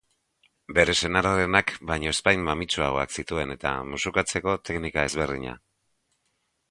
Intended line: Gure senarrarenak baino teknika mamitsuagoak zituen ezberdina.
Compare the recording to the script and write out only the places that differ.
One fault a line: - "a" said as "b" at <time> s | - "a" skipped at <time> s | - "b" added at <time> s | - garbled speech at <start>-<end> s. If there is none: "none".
- "Gure" said as "Bere" at 0.8 s
- "teknika" said as "ezpain" at 2.1 s
- "eta musukatzeko teknika" added at 3.6 s